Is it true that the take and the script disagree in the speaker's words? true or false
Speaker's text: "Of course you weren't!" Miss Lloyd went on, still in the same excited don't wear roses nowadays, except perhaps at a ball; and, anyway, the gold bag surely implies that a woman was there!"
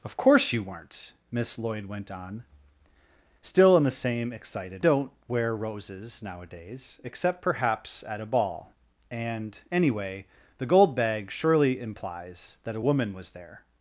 false